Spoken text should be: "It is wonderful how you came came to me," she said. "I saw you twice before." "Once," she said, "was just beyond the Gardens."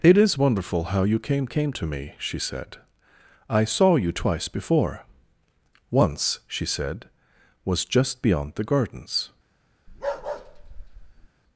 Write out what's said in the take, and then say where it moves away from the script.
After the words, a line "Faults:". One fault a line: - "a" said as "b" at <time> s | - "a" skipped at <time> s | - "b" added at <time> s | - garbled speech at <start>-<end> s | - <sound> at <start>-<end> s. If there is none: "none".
"It is wonderful how you came came to me," she said. "I saw you twice before." "Once," she said, "was just beyond the Gardens."
Faults:
- bark at 9.9-11.3 s